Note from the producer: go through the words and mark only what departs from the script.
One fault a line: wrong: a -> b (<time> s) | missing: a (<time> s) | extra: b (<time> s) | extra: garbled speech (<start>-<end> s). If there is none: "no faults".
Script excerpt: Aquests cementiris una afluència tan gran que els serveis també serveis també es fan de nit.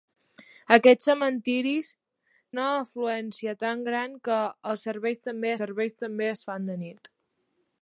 no faults